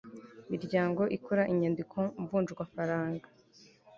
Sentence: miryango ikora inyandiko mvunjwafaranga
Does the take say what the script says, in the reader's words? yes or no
yes